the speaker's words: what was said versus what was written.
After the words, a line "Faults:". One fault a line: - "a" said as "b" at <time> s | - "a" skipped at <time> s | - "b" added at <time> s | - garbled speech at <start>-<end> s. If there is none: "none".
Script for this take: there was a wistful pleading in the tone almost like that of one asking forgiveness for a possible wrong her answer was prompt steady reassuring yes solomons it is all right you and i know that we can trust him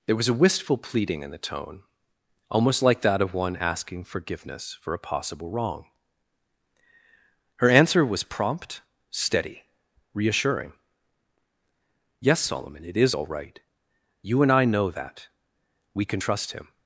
there was a wistful pleading in the tone almost like that of one asking forgiveness for a possible wrong her answer was prompt steady reassuring yes solomon it is all right you and i know that we can trust him
Faults:
- "solomons" said as "solomon" at 12.4 s